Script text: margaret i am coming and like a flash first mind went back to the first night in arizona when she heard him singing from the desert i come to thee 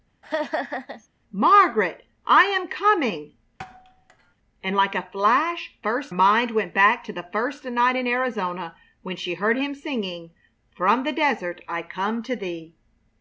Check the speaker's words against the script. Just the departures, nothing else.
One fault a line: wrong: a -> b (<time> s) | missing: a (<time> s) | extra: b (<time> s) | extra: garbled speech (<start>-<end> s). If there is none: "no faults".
no faults